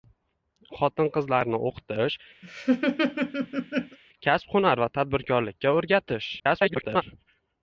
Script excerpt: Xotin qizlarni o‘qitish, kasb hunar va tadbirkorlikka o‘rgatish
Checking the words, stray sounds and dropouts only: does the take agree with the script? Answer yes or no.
no